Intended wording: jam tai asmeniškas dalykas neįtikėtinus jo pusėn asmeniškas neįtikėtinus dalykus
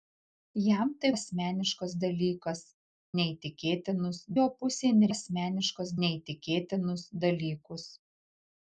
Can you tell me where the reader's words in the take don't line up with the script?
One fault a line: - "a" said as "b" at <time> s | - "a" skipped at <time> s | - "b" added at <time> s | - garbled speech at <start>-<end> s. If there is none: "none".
none